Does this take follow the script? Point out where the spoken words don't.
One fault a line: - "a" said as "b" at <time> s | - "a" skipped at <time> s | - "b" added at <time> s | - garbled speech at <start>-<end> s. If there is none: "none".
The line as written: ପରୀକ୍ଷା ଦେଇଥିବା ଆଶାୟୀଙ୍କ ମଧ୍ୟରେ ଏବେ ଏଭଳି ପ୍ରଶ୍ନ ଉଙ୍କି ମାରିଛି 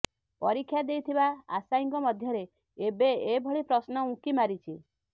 none